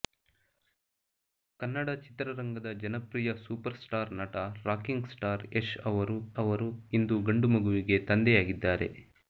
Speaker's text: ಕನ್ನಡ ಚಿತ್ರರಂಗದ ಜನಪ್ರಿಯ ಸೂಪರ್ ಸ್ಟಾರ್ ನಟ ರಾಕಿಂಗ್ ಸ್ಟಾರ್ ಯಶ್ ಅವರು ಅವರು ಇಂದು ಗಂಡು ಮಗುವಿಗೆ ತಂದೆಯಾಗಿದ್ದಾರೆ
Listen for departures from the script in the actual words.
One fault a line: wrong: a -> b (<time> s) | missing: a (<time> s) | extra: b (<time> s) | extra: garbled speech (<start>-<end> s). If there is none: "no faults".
no faults